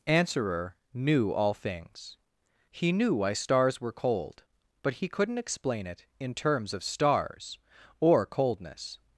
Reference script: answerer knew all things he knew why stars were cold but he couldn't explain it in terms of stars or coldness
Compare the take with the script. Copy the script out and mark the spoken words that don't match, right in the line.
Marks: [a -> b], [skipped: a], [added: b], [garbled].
answerer knew all things he knew why stars were cold but he couldn't explain it in terms of stars or coldness